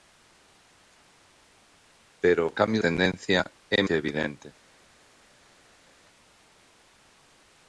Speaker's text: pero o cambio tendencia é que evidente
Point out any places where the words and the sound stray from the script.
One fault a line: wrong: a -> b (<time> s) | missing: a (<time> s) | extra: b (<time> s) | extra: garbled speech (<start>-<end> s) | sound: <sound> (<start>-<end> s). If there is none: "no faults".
no faults